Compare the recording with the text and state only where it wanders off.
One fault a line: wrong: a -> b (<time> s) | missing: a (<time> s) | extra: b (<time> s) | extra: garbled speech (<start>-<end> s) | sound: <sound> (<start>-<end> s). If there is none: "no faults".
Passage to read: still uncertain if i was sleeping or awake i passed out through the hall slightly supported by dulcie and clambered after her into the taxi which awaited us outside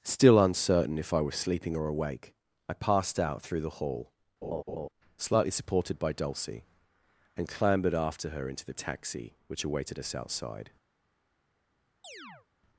sound: laugh (4.4-4.9 s)
sound: chirp (12.0-12.5 s)